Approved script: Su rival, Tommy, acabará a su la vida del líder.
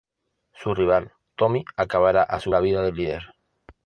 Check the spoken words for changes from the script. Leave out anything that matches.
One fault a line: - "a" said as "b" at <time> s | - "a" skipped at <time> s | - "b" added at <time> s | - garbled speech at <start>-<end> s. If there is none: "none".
none